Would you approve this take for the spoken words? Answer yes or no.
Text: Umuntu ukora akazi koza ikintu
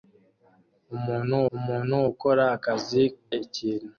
no